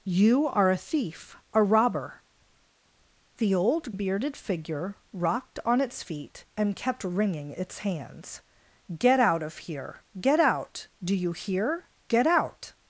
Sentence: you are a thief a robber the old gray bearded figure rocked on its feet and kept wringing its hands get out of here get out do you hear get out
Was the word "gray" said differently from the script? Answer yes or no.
yes